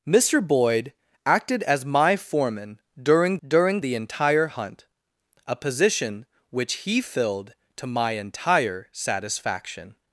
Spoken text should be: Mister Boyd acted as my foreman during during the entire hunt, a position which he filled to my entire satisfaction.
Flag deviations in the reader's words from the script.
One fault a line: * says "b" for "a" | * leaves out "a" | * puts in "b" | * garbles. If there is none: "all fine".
all fine